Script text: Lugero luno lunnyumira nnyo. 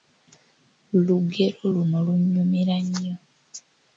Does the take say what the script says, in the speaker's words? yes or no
yes